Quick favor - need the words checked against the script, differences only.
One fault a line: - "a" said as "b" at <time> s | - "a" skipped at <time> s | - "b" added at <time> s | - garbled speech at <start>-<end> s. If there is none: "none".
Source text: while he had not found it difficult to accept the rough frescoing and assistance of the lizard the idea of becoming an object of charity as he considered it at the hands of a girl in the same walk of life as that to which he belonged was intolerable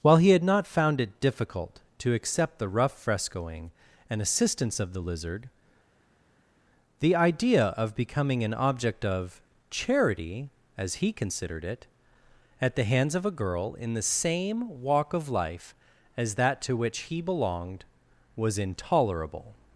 none